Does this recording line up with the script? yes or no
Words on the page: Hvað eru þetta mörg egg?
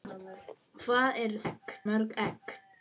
no